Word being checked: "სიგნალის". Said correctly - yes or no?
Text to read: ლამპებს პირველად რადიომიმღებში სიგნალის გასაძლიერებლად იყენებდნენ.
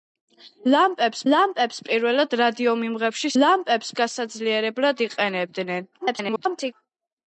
no